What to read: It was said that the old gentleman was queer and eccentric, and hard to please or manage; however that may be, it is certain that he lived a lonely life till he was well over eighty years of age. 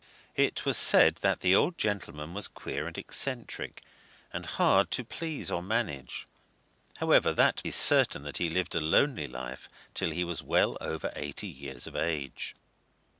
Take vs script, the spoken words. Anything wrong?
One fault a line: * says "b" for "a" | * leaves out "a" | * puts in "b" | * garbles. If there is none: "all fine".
* leaves out "may be it"